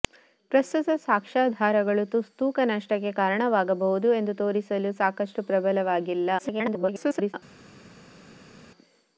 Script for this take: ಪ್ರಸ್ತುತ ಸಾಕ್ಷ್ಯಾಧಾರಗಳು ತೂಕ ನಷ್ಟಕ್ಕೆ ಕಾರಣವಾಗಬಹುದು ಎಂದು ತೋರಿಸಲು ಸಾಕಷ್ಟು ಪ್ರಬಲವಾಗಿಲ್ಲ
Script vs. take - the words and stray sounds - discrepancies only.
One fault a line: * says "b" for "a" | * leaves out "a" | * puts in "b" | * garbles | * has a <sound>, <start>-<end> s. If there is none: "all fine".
* garbles